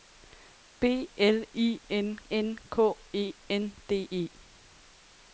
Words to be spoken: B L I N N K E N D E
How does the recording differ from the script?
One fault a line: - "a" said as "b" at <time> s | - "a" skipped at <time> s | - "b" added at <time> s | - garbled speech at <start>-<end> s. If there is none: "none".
none